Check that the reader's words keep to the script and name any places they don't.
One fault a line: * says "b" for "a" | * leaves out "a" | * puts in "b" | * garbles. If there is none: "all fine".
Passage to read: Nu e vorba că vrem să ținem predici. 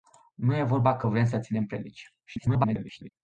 * garbles